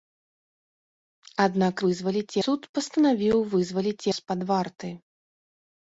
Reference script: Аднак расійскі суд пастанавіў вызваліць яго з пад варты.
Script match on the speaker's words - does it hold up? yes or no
no